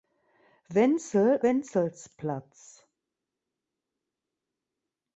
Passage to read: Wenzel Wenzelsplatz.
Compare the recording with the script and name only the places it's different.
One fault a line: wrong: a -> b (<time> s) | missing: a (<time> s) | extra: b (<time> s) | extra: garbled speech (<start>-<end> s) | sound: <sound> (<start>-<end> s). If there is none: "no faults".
no faults